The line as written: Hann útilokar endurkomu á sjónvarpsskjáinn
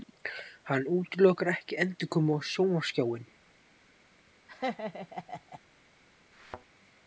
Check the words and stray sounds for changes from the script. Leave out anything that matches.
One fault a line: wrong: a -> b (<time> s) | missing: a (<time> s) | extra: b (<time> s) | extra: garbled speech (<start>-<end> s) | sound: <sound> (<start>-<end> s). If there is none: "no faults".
extra: ekki (1.5 s)
sound: laugh (4.5-5.6 s)
sound: thud (6.3-6.7 s)